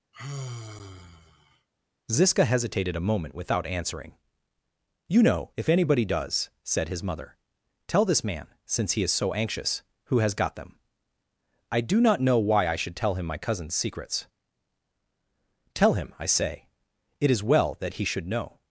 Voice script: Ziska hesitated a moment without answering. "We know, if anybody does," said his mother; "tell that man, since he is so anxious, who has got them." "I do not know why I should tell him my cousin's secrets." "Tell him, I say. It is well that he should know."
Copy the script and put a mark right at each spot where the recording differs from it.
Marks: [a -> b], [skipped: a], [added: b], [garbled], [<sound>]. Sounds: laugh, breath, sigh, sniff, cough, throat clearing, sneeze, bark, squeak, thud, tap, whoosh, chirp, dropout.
[sigh] Ziska hesitated a moment without answering. ["We -> You] know, if anybody does," said his mother; "tell [that -> this] man, since he is so anxious, who has got them." "I do not know why I should tell him my cousin's secrets." "Tell him, I say. It is well that he should know."